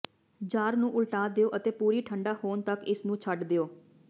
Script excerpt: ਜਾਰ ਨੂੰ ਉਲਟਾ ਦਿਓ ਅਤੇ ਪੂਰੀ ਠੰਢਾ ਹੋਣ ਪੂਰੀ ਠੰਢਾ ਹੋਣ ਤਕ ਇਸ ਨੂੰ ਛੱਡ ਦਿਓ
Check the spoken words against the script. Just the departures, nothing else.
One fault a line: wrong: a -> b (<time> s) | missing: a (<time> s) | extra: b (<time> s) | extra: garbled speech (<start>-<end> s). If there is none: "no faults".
missing: ਪੂਰੀ ਠੰਢਾ ਹੋਣ (2.6 s)